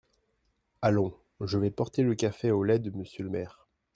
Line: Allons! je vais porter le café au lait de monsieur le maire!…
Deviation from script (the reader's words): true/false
false